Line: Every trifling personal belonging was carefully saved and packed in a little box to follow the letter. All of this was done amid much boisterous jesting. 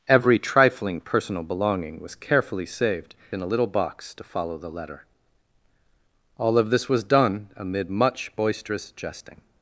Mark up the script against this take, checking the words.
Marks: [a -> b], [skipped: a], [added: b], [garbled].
Every trifling personal belonging was carefully saved [skipped: and packed] in a little box to follow the letter. All of this was done amid much boisterous jesting.